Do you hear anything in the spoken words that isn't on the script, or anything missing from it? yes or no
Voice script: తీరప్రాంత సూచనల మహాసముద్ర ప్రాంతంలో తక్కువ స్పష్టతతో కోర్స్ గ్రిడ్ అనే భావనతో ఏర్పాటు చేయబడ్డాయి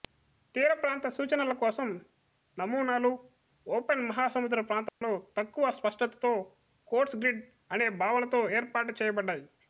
yes